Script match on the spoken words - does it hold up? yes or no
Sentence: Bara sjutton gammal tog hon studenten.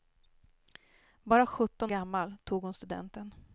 yes